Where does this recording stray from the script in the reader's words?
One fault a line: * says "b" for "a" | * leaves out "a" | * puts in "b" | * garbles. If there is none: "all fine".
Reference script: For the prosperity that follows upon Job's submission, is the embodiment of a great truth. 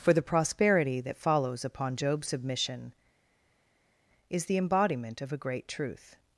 all fine